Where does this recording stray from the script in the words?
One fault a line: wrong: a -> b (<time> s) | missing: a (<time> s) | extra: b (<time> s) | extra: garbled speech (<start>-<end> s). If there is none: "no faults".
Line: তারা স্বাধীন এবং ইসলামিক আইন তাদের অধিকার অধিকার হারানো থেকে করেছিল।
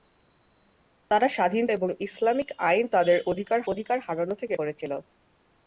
no faults